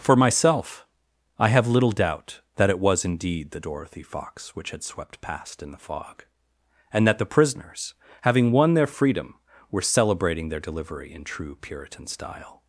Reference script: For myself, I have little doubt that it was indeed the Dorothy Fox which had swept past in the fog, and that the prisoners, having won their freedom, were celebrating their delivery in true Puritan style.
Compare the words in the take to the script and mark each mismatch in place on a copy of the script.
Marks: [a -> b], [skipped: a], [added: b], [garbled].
For myself, I have little doubt that it was indeed the Dorothy Fox which had swept past in the fog, and that the prisoners, having won their freedom, were celebrating their delivery in true Puritan style.